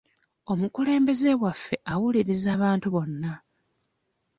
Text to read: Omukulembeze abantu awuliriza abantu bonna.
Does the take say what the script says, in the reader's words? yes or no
no